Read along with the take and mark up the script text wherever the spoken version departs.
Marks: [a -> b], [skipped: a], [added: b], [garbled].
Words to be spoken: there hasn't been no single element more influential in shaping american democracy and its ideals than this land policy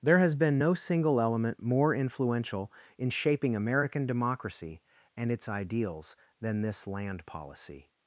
there [hasn't -> has] been no single element more influential in shaping american democracy and its ideals than this land policy